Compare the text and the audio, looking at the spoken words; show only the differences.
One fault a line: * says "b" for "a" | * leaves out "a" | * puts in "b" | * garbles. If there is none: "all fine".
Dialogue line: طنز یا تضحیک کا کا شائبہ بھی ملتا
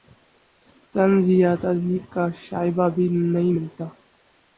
* leaves out "کا"
* puts in "نہیں"